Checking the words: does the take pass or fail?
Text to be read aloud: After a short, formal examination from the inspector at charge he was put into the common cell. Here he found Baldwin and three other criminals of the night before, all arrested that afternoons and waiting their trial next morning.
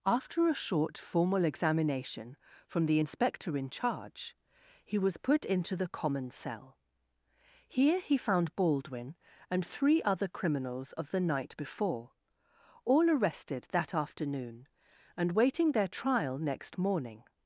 fail